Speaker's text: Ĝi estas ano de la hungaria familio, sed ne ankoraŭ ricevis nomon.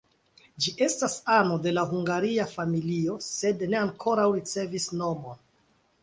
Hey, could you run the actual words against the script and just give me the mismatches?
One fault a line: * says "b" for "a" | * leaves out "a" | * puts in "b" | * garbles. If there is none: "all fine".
all fine